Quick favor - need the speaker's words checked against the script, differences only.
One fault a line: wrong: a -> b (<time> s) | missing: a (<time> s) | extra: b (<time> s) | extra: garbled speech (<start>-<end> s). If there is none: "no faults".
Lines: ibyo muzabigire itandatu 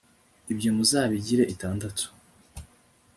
no faults